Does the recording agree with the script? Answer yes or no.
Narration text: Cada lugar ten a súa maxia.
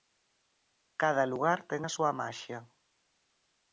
yes